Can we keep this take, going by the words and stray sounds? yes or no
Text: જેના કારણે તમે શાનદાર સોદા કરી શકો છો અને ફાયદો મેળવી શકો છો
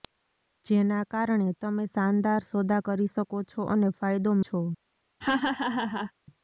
no